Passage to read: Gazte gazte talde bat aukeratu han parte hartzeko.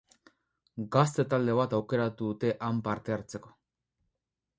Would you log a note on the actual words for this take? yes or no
yes